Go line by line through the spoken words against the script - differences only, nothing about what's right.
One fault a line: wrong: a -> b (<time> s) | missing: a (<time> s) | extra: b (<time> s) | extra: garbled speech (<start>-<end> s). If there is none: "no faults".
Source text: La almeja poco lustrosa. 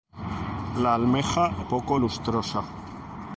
no faults